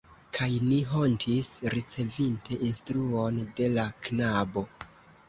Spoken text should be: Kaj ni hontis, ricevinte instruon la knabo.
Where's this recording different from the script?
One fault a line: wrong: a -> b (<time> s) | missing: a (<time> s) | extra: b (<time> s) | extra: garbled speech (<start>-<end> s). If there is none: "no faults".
extra: de (3.6 s)